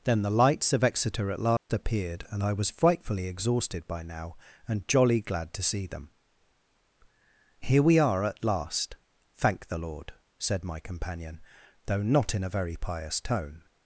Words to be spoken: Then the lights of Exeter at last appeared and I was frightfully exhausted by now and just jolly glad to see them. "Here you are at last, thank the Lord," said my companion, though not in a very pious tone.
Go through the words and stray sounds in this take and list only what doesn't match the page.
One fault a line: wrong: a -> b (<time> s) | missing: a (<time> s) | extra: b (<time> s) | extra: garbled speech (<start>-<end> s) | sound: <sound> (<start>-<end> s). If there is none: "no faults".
sound: dropout (1.6-1.7 s)
missing: just (4.9 s)
wrong: you -> we (7.8 s)